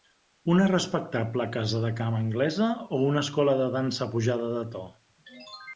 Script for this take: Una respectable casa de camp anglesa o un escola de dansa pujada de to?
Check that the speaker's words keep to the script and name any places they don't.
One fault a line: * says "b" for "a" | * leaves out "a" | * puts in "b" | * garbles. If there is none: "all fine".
* says "una" for "un"